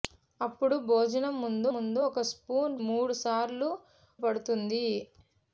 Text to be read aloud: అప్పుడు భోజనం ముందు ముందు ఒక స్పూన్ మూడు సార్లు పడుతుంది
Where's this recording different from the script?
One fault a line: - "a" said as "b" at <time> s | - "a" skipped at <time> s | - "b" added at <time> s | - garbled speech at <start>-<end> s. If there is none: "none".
none